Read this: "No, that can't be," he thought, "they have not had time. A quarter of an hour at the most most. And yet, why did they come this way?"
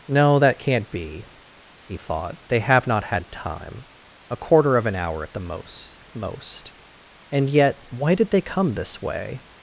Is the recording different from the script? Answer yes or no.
no